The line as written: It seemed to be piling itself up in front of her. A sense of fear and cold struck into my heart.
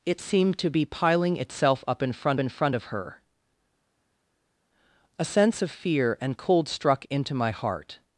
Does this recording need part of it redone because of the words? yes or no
yes